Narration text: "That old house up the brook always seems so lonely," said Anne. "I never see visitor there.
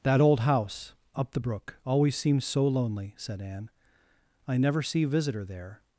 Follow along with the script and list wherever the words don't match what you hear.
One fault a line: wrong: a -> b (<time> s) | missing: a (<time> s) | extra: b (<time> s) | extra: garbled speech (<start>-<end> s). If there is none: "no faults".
no faults